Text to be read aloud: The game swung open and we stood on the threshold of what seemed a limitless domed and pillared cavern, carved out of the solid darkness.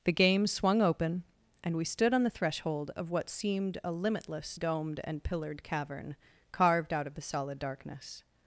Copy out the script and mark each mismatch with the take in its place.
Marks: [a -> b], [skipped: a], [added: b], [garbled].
The game swung open and we stood on the threshold of what seemed a limitless domed and pillared cavern, carved out of the solid darkness.